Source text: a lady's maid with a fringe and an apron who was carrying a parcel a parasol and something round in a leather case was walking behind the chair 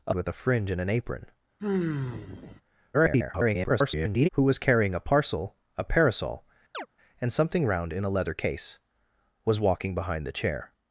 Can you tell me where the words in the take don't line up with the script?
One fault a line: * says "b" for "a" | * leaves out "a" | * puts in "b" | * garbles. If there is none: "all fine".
* leaves out "lady's maid"
* garbles